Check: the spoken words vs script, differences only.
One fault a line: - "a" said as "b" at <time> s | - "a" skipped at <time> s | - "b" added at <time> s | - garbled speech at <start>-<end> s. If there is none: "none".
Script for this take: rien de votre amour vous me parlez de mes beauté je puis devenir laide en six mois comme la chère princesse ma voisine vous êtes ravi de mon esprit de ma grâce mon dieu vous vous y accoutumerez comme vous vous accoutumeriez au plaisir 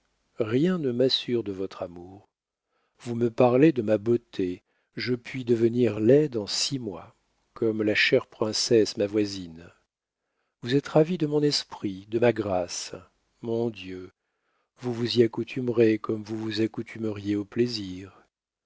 - "ne m'assure" added at 0.8 s
- "mes" said as "ma" at 3.8 s